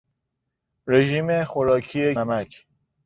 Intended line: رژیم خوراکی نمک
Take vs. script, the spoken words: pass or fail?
pass